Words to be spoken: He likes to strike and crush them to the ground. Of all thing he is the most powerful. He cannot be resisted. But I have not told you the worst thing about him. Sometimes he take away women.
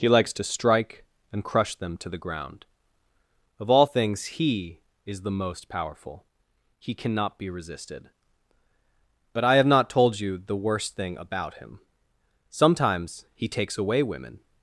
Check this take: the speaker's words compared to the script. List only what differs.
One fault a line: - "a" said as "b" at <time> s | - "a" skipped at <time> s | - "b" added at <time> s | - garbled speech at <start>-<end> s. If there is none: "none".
- "thing" said as "things" at 3.8 s
- "take" said as "takes" at 13.5 s